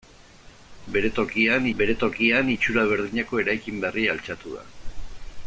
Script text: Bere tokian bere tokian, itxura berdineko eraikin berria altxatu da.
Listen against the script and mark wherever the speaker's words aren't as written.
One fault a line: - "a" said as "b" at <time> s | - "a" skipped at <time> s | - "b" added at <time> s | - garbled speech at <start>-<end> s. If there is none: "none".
none